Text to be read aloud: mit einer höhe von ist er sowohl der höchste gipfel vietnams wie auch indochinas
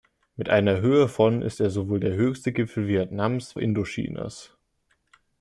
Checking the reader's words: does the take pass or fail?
fail